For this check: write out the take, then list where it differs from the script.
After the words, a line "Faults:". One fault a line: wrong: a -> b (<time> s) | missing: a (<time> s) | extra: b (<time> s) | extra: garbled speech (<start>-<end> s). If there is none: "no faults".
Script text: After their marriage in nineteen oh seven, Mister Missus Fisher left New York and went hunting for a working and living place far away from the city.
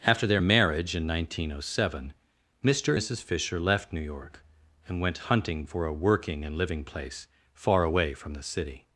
After their marriage in nineteen oh seven, Mister Missus Fisher left New York and went hunting for a working and living place far away from the city.
Faults:
no faults